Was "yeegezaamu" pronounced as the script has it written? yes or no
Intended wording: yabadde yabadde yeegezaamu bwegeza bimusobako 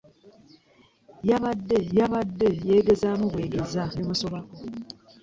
yes